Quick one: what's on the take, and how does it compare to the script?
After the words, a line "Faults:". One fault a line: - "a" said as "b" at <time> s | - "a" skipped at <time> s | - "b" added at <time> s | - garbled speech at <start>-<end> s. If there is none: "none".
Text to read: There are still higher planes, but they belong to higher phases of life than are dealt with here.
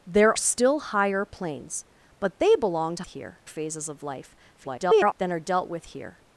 There still higher planes, but they belong to here phases of life [garbled] than are dealt with here.
Faults:
- "are" skipped at 0.3 s
- "higher" said as "here" at 3.1 s
- garbled speech at 4.6-5.1 s